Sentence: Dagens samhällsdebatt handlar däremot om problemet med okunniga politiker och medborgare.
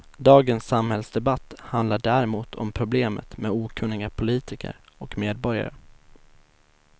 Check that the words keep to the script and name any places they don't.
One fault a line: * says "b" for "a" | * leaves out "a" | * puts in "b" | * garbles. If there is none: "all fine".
all fine